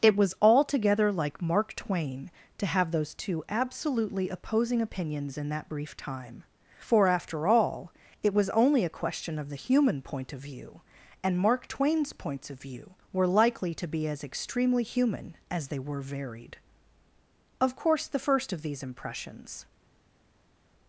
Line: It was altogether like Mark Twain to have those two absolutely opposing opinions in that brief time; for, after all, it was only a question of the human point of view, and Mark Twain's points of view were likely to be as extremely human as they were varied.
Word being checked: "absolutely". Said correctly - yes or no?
yes